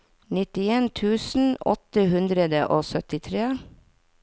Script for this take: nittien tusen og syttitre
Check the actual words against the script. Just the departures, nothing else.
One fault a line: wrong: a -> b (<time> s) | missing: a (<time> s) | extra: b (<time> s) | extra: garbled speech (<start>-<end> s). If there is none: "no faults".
extra: åtte hundre (1.7 s)